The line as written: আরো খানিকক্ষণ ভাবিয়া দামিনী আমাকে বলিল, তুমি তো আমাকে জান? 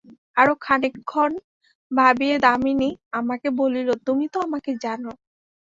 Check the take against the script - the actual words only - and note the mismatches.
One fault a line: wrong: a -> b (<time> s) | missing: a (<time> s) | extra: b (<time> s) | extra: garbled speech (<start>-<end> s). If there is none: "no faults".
no faults